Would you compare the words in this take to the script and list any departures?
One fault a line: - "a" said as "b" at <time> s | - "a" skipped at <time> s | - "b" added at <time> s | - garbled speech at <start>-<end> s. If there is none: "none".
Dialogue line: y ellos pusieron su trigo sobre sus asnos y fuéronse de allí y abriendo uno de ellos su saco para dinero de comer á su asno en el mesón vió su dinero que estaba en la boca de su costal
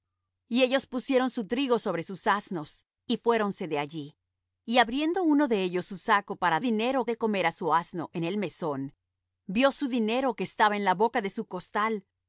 none